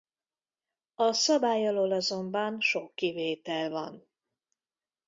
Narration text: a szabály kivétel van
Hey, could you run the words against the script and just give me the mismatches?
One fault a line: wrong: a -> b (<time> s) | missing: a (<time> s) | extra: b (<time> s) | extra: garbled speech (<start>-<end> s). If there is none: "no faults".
extra: alól azonban sok (1.7 s)